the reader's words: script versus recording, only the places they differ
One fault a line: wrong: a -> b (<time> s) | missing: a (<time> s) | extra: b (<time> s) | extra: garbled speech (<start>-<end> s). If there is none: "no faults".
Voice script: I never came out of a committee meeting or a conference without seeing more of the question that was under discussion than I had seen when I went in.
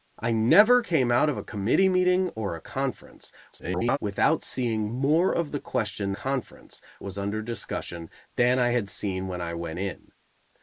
extra: garbled speech (3.5-4.0 s)
wrong: that -> conference (6.1 s)